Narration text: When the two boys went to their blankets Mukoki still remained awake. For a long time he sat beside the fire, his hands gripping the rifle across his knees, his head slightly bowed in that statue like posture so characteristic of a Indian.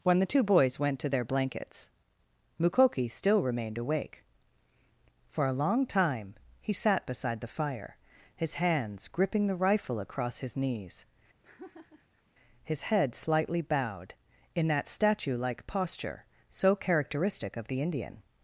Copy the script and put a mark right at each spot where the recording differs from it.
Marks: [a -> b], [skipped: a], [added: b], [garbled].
When the two boys went to their blankets Mukoki still remained awake. For a long time he sat beside the fire, his hands gripping the rifle across his knees, his head slightly bowed in that statue like posture so characteristic of [a -> the] Indian.